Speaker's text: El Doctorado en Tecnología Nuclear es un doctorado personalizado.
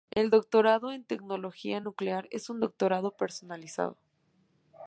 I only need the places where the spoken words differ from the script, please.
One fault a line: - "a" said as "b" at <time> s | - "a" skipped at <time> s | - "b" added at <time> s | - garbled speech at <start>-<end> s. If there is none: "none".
none